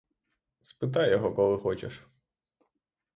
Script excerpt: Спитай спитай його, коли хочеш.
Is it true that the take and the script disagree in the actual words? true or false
true